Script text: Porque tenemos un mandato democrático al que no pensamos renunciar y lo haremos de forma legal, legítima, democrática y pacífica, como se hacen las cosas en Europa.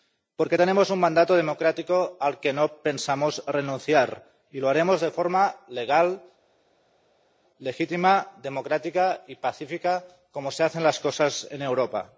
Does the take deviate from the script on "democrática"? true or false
false